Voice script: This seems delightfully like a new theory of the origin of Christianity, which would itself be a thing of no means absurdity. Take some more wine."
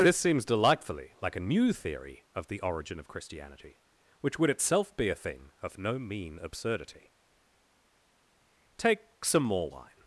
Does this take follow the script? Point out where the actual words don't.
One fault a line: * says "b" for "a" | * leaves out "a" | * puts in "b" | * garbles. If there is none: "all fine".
* says "mean" for "means"